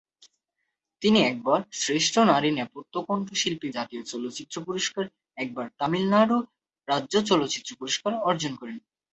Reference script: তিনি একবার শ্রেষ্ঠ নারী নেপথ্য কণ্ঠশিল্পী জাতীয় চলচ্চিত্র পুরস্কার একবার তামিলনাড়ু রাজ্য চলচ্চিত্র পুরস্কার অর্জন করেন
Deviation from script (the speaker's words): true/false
false